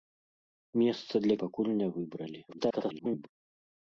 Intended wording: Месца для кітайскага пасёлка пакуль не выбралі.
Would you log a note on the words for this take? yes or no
yes